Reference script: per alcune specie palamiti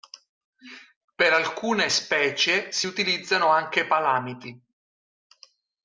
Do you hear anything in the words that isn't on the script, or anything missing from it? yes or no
yes